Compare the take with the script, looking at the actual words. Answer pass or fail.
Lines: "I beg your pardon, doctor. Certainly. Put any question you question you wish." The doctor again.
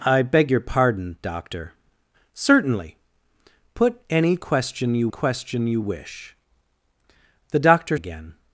pass